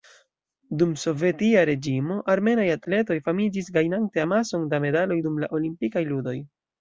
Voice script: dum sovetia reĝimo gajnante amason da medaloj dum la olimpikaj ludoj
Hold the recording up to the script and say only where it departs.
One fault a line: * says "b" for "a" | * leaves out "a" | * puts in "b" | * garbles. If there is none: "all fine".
* puts in "armenaj atletoj famiĝis"